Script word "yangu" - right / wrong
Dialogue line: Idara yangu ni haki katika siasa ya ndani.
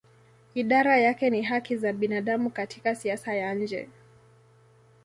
wrong